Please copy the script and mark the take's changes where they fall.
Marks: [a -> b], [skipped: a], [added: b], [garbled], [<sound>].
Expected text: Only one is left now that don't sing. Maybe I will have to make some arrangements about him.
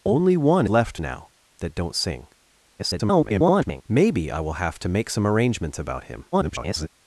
Only one [skipped: is] left now that don't sing. [garbled] Maybe I will have to make some arrangements about him. [garbled]